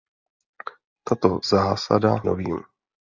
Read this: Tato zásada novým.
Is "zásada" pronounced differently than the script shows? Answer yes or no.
no